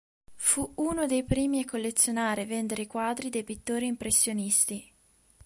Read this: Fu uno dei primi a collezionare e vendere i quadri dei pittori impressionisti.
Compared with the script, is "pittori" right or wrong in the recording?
right